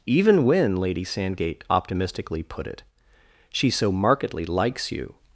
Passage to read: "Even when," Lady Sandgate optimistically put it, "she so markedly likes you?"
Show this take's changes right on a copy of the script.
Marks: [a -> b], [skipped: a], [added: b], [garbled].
"Even when," Lady Sandgate optimistically put it, "she so markedly likes you?"